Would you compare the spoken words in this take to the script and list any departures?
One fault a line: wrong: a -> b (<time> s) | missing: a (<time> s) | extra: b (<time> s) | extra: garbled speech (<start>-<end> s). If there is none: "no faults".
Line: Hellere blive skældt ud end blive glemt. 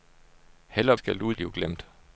missing: blive (1.0 s)
missing: end (1.3 s)